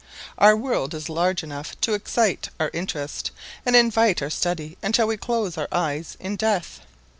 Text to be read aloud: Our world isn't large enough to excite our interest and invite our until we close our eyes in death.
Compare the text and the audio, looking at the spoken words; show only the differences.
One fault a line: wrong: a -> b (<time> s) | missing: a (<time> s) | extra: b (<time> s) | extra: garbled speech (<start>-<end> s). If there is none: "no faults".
wrong: isn't -> is (0.9 s)
extra: study (4.3 s)